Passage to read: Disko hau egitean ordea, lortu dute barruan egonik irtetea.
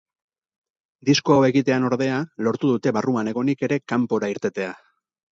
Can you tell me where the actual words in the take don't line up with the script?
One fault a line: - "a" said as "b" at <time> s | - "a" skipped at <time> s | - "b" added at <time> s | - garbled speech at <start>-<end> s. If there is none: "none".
- "ere kanpora" added at 3.7 s